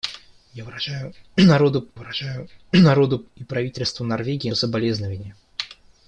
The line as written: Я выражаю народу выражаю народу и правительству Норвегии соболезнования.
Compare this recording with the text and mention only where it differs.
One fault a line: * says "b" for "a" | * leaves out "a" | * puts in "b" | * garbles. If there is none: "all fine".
all fine